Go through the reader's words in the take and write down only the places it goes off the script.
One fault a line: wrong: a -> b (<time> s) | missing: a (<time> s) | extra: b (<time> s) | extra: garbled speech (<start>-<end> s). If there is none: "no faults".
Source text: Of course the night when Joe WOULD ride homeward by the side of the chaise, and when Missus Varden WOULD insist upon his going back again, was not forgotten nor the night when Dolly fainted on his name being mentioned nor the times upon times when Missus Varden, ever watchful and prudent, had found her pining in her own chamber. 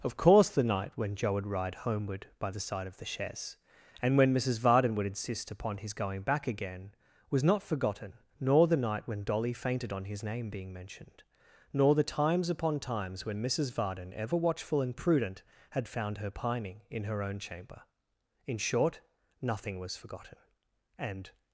extra: In short nothing was forgotten and (18.4 s)